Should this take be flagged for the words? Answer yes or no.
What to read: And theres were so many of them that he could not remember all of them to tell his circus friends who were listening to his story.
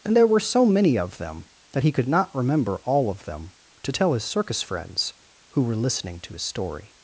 yes